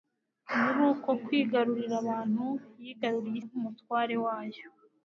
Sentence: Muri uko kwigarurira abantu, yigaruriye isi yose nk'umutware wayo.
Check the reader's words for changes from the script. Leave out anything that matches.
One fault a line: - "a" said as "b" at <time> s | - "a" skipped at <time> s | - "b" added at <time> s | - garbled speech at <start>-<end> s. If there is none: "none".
- "isi yose" skipped at 3.4 s